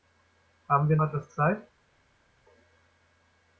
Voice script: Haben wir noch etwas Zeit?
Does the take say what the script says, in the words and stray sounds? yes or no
no